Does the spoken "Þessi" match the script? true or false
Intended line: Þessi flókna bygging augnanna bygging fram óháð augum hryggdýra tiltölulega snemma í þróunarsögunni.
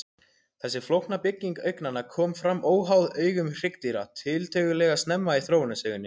true